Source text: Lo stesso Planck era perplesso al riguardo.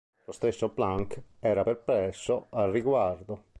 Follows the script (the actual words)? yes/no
yes